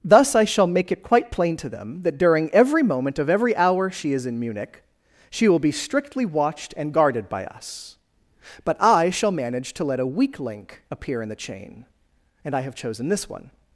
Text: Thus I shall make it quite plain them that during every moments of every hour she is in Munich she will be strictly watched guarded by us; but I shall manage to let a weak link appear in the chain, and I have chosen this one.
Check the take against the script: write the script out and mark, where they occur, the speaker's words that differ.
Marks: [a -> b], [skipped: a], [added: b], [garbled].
Thus I shall make it quite plain [added: to] them that during every [moments -> moment] of every hour she is in Munich she will be strictly watched [added: and] guarded by us; but I shall manage to let a weak link appear in the chain, and I have chosen this one.